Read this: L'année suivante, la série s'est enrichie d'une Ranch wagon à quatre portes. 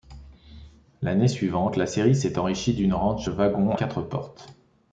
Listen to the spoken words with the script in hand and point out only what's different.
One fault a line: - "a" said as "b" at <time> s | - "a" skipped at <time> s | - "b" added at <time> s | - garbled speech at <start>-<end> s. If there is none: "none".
- "à" skipped at 3.8 s